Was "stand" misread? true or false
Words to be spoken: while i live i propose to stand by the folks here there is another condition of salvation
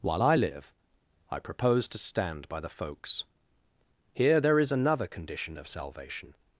false